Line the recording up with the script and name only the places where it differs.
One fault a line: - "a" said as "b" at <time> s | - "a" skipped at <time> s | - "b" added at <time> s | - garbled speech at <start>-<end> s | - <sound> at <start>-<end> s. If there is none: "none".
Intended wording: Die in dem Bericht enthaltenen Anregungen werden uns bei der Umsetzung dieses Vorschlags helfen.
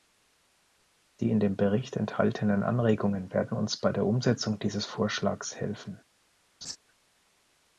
- laugh at 6.6-6.8 s